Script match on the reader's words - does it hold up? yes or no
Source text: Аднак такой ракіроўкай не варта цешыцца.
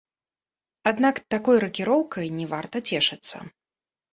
yes